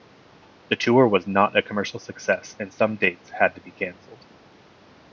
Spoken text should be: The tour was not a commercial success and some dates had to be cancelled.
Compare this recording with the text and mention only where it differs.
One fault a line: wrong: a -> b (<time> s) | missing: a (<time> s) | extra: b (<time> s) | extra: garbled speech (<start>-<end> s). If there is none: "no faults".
no faults